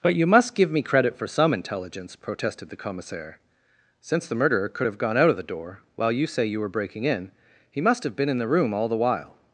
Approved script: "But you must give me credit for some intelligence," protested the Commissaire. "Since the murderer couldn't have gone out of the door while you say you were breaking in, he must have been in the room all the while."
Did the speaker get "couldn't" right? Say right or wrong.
wrong